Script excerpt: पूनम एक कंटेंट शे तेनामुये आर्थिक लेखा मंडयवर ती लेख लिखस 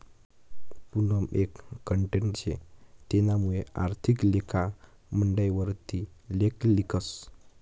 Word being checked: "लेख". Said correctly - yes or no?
yes